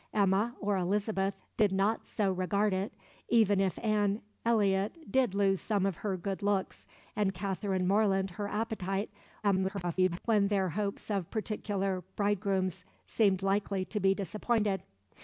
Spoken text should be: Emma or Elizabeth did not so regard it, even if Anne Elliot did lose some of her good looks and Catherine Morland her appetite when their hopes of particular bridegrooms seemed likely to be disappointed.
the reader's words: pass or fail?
fail